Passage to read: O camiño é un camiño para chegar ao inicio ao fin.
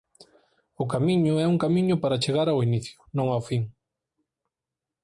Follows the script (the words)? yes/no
no